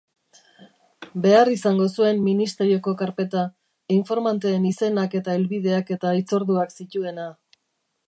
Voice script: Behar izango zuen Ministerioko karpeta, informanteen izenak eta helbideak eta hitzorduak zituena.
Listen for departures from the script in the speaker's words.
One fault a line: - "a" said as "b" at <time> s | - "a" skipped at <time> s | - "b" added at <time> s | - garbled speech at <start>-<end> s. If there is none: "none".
none